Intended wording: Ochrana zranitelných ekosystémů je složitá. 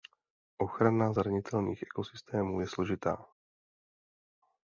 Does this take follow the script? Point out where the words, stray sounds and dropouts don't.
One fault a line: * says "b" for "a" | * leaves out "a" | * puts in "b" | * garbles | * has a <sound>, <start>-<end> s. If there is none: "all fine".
all fine